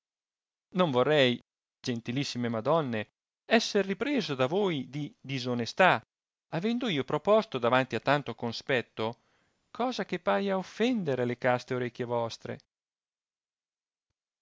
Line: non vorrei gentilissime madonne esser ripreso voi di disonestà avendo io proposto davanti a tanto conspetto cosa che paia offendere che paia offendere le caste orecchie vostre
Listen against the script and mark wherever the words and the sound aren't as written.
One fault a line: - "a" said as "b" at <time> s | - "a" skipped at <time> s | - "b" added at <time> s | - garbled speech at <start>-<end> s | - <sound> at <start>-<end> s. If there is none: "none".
- "da" added at 4.3 s
- "che paia offendere" skipped at 11.2 s